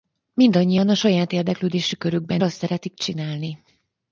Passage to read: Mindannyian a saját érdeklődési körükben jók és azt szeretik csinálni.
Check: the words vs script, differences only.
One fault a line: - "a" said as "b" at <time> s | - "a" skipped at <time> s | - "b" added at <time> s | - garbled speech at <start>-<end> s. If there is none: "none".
- "jók és" skipped at 2.4 s